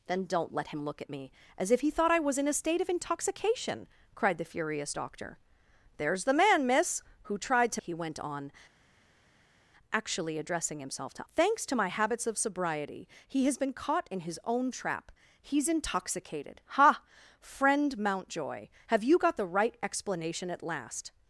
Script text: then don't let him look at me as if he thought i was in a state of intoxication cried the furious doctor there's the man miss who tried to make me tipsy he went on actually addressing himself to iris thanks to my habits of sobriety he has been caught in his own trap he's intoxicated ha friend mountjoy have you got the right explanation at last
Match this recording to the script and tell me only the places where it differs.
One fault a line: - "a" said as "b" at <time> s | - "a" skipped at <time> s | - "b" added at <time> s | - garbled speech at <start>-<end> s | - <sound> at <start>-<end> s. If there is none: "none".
- "make me tipsy" skipped at 7.8 s
- "iris" skipped at 11.3 s